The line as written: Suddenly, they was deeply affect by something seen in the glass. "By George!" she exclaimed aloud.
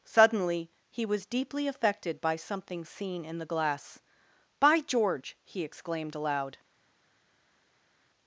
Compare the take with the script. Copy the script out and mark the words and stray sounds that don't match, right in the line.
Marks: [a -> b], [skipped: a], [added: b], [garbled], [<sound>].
Suddenly, [they -> he] was deeply [affect -> affected] by something seen in the glass. "By George!" [she -> he] exclaimed aloud.